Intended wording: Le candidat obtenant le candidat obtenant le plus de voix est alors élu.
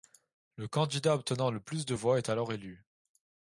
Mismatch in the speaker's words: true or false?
true